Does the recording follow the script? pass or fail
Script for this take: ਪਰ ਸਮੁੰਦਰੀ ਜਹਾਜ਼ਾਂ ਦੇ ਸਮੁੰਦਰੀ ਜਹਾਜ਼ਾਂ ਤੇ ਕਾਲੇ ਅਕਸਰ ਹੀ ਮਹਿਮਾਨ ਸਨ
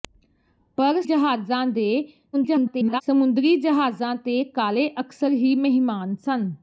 fail